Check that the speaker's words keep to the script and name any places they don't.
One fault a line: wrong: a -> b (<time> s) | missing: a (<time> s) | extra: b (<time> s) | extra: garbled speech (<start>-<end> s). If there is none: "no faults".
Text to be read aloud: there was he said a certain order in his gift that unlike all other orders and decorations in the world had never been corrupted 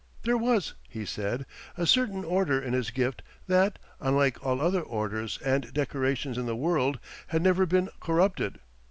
no faults